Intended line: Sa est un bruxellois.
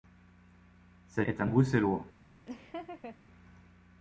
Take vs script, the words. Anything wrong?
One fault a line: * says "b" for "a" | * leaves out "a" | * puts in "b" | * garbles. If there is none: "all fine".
all fine